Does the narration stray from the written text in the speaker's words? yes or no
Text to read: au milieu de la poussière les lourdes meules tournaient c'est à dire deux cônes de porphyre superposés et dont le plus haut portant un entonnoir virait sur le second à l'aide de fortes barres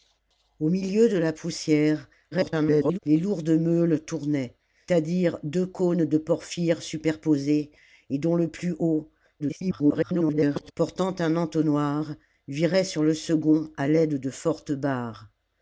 yes